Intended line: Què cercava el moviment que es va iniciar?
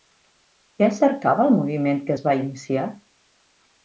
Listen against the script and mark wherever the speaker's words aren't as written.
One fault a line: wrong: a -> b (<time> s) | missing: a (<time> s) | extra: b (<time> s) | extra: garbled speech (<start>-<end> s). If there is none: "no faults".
no faults